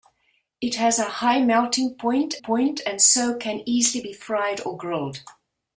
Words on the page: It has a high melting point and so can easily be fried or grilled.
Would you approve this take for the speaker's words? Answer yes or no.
no